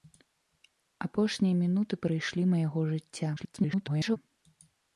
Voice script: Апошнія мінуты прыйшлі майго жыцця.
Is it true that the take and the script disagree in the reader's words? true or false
true